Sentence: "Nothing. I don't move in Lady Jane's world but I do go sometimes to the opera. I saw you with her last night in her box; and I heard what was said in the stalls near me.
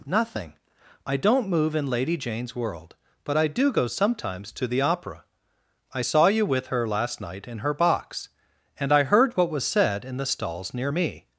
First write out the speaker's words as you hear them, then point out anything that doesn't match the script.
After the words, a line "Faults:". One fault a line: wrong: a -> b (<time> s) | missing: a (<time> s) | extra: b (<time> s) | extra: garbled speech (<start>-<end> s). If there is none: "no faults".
"Nothing. I don't move in Lady Jane's world but I do go sometimes to the opera. I saw you with her last night in her box; and I heard what was said in the stalls near me.
Faults:
no faults